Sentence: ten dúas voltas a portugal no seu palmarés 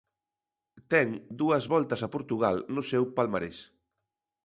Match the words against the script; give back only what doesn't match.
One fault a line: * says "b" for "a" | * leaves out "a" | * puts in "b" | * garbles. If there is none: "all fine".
all fine